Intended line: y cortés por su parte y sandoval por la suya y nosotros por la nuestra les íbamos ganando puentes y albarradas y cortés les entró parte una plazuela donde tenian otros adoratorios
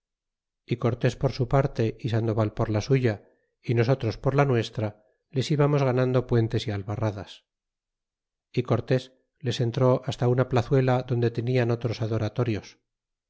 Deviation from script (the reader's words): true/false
true